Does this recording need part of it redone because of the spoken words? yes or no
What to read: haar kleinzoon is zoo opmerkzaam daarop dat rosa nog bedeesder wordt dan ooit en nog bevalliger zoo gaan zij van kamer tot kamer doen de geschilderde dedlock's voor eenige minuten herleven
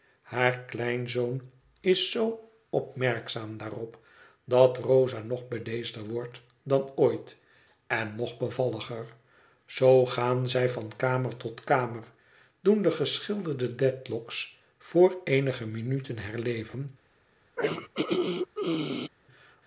no